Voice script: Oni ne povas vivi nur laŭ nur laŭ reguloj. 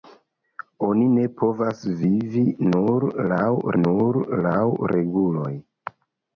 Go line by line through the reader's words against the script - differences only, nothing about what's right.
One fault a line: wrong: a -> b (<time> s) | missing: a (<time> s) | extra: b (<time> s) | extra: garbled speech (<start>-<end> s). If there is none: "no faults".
no faults